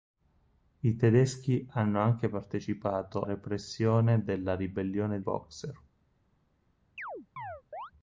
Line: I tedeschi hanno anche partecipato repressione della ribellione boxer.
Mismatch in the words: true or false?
false